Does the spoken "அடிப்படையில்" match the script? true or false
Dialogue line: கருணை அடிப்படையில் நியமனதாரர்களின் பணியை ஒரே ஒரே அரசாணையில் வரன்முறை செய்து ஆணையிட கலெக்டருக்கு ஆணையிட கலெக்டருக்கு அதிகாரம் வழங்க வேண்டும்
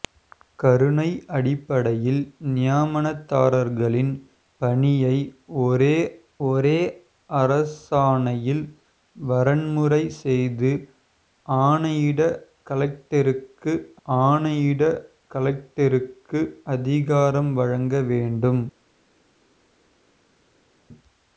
true